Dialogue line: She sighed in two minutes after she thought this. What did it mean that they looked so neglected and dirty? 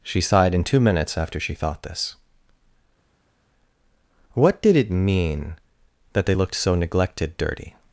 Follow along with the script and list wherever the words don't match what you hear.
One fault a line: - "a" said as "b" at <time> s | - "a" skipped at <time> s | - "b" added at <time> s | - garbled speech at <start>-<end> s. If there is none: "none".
- "and" skipped at 7.4 s